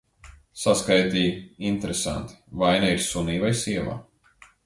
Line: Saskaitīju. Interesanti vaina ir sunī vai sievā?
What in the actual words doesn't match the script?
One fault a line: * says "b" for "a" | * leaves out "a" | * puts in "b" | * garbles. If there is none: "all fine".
all fine